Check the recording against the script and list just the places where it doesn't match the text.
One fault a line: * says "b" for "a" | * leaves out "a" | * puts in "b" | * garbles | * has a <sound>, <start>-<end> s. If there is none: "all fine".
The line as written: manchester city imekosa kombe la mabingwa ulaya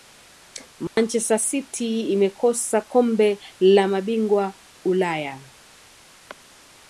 * has a dropout, 0.9-1.0 s